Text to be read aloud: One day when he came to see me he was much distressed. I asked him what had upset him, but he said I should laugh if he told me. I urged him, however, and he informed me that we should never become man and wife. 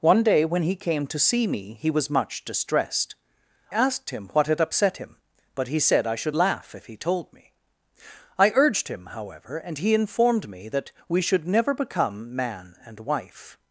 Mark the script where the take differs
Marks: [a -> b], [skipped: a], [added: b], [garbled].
One day when he came to see me he was much distressed. [skipped: I] asked him what had upset him, but he said I should laugh if he told me. I urged him, however, and he informed me that we should never become man and wife.